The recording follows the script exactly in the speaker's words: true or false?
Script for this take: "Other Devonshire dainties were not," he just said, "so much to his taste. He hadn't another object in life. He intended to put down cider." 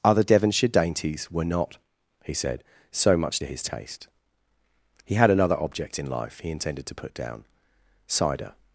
false